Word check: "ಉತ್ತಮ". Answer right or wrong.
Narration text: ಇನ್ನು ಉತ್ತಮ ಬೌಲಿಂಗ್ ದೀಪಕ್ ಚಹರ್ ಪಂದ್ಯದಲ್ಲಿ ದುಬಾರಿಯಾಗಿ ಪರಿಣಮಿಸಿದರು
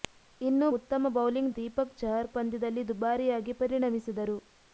right